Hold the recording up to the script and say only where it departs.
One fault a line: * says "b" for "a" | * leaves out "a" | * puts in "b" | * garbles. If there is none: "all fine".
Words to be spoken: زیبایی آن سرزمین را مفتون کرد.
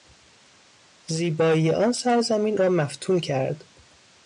all fine